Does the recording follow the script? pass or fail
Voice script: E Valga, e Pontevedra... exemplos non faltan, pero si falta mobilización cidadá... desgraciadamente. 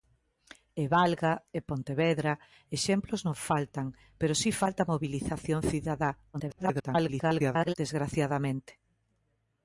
fail